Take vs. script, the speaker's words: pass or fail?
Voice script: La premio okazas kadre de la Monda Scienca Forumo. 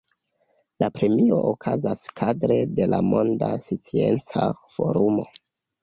pass